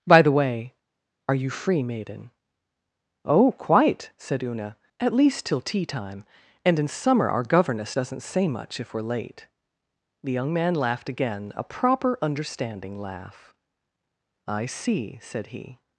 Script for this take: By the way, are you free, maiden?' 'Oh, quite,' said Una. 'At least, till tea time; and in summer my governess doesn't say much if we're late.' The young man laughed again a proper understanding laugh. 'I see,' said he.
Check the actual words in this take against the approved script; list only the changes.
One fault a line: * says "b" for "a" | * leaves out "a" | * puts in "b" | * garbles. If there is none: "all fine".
* says "our" for "my"